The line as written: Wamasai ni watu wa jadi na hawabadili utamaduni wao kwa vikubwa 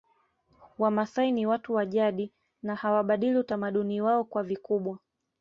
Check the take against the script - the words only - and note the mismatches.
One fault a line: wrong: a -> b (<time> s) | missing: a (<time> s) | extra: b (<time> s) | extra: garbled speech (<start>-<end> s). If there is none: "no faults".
no faults